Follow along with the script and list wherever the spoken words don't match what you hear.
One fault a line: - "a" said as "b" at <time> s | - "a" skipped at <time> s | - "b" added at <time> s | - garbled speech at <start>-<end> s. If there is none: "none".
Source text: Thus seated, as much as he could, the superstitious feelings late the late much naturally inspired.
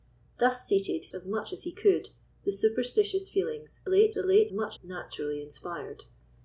none